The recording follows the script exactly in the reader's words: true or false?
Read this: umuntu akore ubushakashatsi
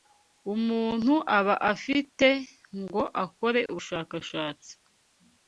false